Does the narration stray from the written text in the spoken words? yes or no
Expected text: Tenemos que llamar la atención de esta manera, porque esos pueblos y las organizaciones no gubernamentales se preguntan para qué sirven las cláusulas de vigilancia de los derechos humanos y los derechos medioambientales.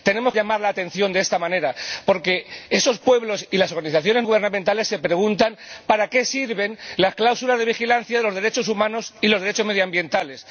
yes